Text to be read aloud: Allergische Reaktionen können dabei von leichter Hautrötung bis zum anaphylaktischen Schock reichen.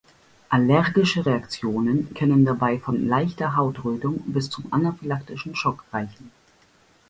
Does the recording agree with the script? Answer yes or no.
yes